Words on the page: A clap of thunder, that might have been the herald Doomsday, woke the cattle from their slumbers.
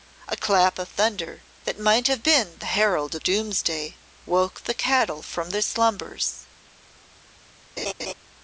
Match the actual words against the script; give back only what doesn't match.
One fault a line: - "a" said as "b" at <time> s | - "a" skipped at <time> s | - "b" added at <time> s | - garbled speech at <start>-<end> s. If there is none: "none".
none